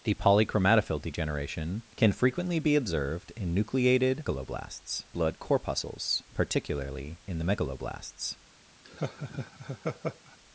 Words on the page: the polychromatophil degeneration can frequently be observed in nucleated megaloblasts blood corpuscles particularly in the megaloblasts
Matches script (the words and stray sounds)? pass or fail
fail